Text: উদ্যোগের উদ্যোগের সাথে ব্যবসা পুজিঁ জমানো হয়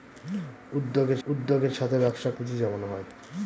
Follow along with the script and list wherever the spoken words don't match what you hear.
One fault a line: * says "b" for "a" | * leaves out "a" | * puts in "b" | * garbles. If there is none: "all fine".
all fine